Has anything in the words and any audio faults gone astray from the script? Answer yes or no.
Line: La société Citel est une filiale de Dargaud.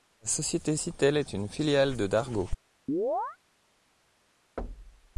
yes